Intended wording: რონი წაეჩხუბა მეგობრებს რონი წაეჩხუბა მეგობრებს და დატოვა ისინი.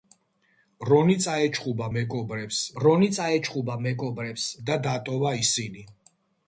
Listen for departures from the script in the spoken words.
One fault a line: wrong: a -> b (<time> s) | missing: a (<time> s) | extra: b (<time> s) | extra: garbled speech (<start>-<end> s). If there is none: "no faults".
no faults